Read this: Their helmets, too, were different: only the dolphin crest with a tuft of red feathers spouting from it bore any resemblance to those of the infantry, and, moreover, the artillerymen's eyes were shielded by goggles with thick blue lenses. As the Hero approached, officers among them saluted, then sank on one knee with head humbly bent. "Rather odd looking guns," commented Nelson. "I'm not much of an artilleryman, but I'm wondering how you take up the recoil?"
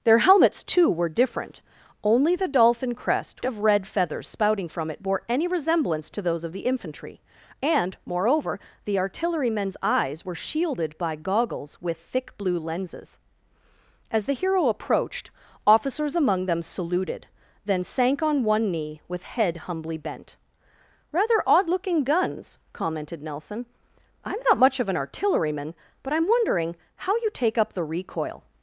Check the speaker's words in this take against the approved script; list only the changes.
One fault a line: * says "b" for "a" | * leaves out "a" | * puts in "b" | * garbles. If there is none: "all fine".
* leaves out "with a tuft"